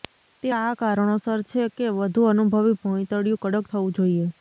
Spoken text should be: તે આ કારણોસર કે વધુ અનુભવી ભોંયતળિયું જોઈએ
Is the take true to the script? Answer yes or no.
no